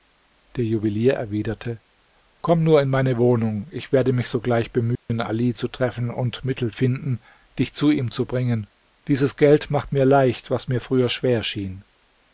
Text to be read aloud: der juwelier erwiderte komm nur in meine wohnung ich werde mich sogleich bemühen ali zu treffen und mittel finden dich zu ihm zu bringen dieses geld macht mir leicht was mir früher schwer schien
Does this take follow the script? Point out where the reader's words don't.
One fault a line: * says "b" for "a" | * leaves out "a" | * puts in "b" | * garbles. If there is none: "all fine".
all fine